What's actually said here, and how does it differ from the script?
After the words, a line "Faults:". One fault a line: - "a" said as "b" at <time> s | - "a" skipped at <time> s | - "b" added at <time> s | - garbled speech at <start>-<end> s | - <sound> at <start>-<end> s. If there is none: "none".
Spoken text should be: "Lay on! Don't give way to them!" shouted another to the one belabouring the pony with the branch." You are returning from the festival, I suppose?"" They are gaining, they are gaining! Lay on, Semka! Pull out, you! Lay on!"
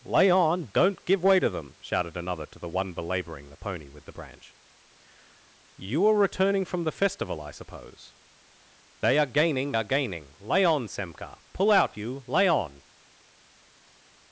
"Lay on! Don't give way to them!" shouted another to the one belabouring the pony with the branch." You are returning from the festival, I suppose?"" They are gaining, are gaining! Lay on, Semka! Pull out, you! Lay on!"
Faults:
- "they" skipped at 9.7 s